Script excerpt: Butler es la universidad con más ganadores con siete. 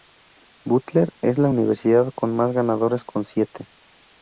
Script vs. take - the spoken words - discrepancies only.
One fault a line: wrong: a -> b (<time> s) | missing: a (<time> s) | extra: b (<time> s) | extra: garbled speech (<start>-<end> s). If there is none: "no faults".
no faults